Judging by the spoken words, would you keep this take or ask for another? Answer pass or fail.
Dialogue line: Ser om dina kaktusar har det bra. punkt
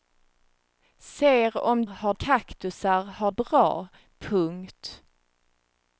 fail